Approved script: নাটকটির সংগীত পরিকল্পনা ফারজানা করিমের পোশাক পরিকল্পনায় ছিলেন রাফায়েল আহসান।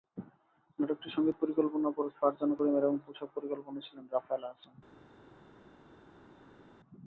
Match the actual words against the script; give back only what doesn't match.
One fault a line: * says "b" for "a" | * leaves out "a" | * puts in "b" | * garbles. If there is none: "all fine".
* puts in "এবং"